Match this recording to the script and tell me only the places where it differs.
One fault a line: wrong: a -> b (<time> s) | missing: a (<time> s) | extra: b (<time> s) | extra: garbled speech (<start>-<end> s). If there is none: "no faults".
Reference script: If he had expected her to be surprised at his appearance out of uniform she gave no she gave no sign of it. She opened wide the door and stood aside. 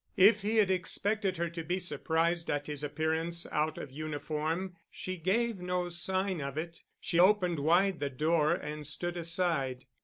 missing: she gave no (5.9 s)